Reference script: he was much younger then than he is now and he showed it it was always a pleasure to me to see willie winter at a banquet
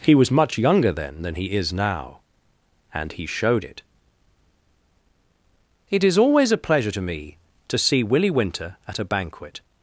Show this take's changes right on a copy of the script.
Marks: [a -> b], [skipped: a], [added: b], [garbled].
he was much younger then than he is now and he showed it it [was -> is] always a pleasure to me to see willie winter at a banquet